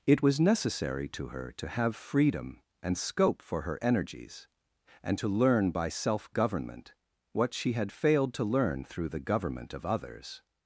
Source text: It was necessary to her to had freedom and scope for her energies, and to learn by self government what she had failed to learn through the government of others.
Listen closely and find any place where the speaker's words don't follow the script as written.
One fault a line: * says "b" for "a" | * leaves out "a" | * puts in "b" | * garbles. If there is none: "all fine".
* says "have" for "had"